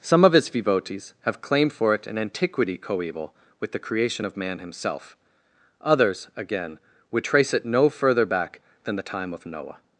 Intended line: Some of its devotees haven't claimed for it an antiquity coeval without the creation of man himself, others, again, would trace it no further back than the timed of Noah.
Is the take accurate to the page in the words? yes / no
no